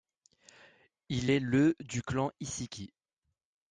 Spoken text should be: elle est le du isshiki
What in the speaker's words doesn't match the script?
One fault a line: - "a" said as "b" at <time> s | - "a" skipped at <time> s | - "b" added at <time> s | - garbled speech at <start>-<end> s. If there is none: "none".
- "elle" said as "il" at 1.1 s
- "clan" added at 2.0 s